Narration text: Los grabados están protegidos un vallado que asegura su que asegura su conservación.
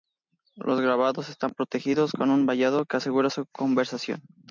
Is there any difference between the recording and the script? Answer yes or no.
yes